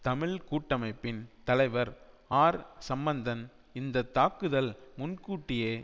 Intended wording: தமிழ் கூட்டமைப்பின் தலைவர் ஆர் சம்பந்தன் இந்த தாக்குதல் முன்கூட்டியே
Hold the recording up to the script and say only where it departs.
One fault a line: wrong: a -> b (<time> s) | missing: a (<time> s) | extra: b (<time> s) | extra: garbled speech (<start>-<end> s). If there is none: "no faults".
no faults